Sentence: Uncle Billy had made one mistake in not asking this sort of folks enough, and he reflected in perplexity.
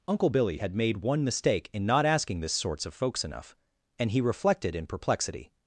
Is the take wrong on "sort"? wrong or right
wrong